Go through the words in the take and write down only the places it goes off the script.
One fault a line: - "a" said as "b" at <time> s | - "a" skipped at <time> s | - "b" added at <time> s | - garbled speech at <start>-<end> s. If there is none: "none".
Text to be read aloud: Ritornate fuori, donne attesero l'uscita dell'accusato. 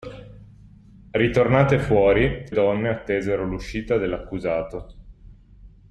none